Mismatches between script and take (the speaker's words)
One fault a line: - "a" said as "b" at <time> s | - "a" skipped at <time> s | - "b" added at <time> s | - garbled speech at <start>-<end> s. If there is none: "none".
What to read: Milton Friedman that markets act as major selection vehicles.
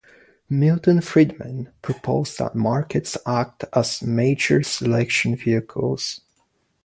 - "proposed" added at 1.8 s